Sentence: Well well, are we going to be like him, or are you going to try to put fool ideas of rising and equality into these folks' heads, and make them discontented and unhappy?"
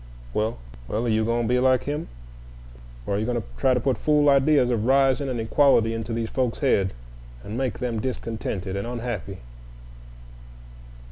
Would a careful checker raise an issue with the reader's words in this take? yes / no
yes